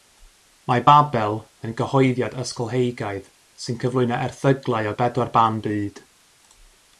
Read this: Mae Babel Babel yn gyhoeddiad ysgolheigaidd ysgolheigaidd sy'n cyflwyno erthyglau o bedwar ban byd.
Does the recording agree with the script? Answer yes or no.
no